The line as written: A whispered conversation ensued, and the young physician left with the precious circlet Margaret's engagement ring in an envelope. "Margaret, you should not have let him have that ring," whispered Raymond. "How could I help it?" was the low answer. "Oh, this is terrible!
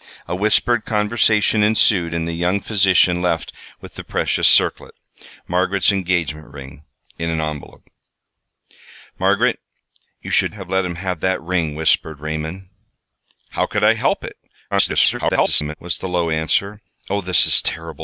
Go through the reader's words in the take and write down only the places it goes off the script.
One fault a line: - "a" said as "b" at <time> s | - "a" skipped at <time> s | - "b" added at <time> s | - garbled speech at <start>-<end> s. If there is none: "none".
- "not" skipped at 10.6 s
- garbled speech at 14.7-15.7 s